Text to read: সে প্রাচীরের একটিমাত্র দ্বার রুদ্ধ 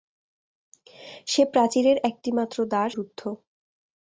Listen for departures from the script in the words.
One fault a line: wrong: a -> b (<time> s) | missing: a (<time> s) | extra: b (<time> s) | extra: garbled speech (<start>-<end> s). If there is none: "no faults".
no faults